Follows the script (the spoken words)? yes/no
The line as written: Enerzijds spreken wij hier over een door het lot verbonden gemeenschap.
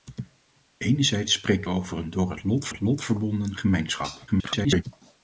no